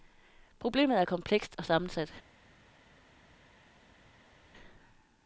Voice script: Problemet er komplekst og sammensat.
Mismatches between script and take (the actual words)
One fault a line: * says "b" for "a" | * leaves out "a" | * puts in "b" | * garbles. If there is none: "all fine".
all fine